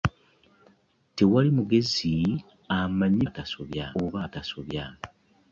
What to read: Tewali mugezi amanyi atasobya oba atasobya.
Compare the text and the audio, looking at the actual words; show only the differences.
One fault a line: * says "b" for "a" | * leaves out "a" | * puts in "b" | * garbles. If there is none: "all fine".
all fine